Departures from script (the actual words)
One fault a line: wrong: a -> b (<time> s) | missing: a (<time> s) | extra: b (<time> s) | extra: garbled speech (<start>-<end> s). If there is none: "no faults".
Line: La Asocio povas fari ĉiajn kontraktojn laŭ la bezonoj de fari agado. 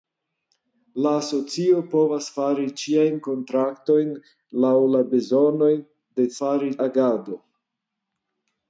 no faults